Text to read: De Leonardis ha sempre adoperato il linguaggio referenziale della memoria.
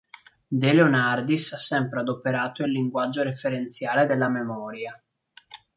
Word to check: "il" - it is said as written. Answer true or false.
true